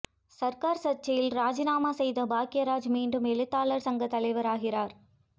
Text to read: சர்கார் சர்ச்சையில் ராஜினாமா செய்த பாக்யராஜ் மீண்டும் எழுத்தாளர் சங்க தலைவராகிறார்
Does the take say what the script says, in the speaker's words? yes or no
yes